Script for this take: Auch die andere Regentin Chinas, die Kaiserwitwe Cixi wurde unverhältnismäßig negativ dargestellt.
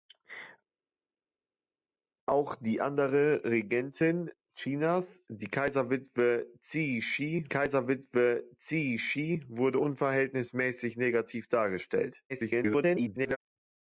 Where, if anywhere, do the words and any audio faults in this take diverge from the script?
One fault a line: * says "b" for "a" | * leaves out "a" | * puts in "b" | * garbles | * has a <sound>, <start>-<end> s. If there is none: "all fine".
* puts in "Kaiserwitwe Cixi"
* garbles